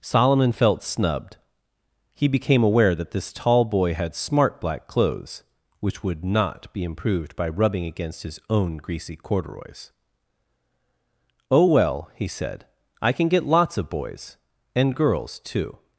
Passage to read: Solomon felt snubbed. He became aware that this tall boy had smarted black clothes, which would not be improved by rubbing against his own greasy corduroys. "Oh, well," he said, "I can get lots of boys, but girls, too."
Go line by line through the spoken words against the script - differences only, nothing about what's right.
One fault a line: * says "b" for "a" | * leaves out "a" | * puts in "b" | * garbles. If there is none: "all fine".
* says "smart" for "smarted"
* says "and" for "but"